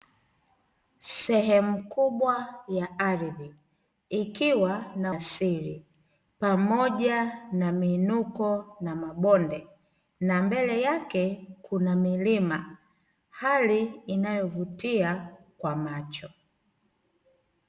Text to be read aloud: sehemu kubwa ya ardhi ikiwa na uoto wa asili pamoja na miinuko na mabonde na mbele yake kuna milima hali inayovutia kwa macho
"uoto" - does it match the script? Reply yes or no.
no